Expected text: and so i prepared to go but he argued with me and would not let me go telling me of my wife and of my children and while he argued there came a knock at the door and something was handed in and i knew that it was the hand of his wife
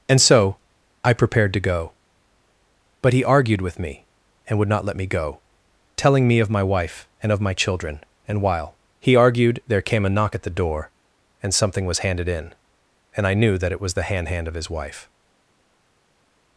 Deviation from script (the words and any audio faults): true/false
true